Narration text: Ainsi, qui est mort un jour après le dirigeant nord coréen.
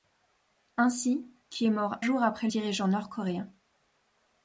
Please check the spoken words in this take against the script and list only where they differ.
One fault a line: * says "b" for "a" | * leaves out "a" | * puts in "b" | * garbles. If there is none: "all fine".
* leaves out "un"
* leaves out "le"